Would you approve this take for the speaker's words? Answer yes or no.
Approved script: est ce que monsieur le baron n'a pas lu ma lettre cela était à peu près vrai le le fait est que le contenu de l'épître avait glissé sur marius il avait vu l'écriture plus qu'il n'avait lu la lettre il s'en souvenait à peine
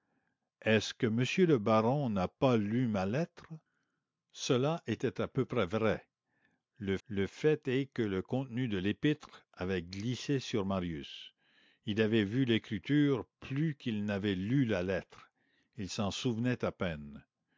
yes